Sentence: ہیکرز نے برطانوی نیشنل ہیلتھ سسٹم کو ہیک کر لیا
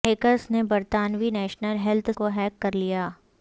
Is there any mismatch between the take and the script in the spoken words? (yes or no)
yes